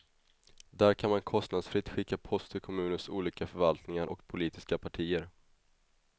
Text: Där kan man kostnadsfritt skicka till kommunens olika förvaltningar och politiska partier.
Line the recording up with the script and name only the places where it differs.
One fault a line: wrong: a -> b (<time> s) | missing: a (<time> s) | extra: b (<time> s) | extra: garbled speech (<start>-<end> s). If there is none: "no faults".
extra: post (2.2 s)